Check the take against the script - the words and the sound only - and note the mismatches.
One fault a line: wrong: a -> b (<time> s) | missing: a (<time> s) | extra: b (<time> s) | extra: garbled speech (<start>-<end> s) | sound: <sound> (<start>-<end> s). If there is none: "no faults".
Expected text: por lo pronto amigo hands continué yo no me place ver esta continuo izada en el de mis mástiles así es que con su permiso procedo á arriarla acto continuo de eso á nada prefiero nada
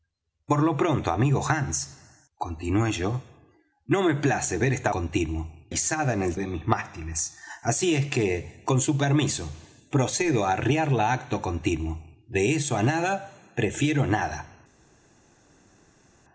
no faults